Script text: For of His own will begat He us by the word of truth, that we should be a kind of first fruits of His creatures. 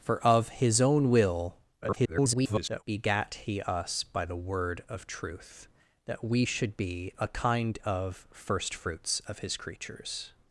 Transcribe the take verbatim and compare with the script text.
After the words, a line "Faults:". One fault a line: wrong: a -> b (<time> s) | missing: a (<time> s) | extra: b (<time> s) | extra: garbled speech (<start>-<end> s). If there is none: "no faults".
For of His own will [garbled] begat He us by the word of truth, that we should be a kind of first fruits of His creatures.
Faults:
extra: garbled speech (1.8-2.8 s)